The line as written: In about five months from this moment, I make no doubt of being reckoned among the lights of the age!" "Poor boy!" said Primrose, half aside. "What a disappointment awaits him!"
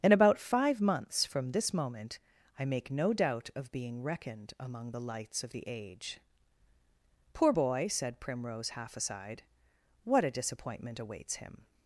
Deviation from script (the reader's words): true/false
false